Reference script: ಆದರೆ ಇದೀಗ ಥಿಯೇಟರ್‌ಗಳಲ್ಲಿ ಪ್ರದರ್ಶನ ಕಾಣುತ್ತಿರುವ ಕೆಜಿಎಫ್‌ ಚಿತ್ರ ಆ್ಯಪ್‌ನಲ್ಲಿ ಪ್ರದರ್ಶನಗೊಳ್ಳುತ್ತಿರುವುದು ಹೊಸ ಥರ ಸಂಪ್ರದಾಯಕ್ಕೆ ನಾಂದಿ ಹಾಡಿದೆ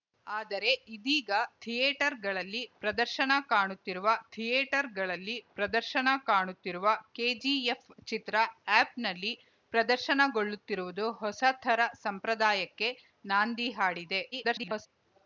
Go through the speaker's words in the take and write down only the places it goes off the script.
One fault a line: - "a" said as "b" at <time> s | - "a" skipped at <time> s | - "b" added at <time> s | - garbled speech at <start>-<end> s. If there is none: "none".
- "ಥಿಯೇಟರ್‌ಗಳಲ್ಲಿ ಪ್ರದರ್ಶನ ಕಾಣುತ್ತಿರುವ" added at 4.3 s
- garbled speech at 14.3-14.9 s